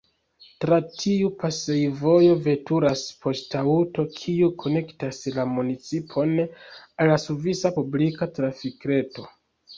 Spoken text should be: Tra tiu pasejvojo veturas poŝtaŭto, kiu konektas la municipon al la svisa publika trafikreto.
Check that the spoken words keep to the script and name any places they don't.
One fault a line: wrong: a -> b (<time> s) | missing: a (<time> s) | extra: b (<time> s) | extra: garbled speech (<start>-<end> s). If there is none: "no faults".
no faults